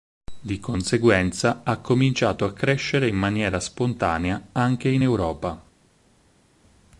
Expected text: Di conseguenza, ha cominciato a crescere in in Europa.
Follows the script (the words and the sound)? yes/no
no